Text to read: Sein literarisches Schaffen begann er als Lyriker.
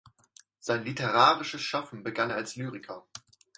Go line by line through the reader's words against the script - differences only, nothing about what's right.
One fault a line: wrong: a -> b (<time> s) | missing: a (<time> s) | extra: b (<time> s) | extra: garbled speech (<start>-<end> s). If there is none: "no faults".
no faults